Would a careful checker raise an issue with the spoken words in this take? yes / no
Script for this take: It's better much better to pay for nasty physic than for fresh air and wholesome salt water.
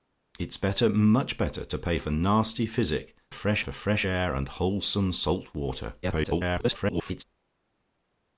yes